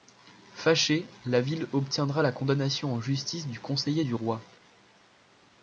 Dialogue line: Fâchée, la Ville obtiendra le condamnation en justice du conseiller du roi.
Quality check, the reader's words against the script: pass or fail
fail